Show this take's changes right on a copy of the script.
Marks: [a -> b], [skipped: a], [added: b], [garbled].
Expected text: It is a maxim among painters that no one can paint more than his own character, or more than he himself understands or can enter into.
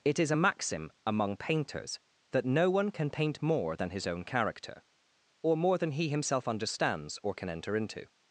It is a maxim among painters that no one can paint more than his own character, or more than he himself understands or can enter into.